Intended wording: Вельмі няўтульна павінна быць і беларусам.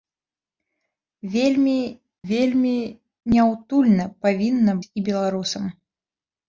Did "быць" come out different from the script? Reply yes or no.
yes